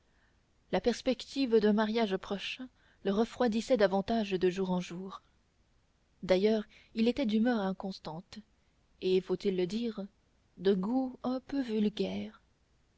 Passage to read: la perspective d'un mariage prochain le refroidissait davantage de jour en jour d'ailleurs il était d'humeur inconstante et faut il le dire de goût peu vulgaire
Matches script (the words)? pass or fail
fail